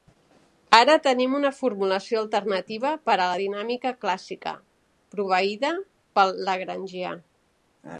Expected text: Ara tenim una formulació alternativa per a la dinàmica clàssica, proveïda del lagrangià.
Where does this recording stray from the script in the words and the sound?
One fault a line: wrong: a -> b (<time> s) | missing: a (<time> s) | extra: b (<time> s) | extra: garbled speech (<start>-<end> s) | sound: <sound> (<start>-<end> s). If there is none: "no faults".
wrong: del -> pel (6.2 s)